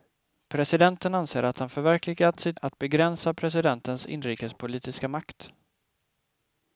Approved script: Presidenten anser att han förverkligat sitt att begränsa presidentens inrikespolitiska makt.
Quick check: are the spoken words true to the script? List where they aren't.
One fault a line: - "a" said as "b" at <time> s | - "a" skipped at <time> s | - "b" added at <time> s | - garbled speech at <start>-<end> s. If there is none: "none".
none